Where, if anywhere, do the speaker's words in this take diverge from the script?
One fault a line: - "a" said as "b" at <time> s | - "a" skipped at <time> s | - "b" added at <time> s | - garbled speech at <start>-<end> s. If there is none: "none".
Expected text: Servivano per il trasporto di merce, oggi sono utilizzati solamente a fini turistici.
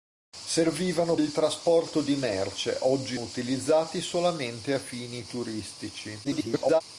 - "per" skipped at 1.1 s
- "sono" skipped at 3.2 s
- garbled speech at 6.2-6.8 s